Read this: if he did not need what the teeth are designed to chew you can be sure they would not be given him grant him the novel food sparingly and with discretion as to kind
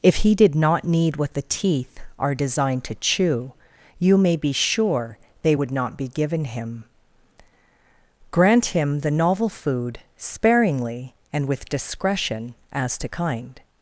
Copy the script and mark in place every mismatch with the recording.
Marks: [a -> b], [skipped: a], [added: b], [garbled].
if he did not need what the teeth are designed to chew you [can -> may] be sure they would not be given him grant him the novel food sparingly and with discretion as to kind